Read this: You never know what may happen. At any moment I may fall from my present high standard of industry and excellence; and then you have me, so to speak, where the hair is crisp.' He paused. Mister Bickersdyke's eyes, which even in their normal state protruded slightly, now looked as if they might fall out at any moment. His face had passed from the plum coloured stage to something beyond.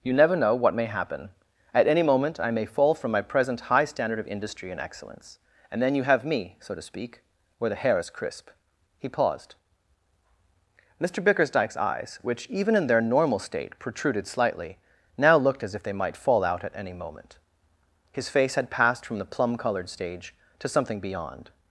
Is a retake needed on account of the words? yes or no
no